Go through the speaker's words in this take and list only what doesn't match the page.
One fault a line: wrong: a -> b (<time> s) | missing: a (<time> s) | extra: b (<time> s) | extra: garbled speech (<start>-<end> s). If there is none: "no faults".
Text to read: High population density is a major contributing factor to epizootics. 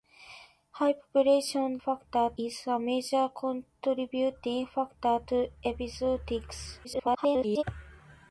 wrong: density -> factor (1.8 s)
extra: garbled speech (6.8-7.6 s)